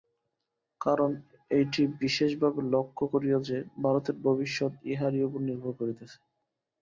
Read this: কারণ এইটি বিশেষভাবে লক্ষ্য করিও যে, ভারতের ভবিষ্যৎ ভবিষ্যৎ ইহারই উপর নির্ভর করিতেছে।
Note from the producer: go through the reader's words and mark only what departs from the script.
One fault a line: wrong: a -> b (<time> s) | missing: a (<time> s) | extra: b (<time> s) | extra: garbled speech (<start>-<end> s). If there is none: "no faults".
missing: ভবিষ্যৎ (4.7 s)